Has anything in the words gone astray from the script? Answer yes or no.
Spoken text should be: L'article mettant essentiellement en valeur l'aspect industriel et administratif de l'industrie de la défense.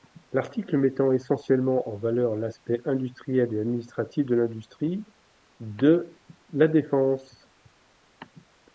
no